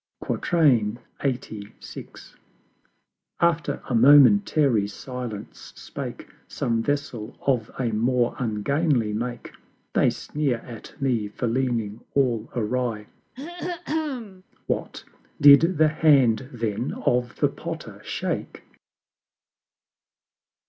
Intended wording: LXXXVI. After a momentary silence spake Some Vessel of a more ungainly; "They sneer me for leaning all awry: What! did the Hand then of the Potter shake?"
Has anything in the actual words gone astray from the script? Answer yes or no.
yes